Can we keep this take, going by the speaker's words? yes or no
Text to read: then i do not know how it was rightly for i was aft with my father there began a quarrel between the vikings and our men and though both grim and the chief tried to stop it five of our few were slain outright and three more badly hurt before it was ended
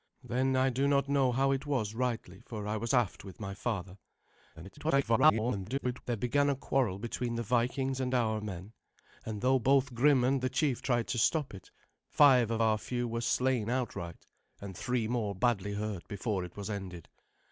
no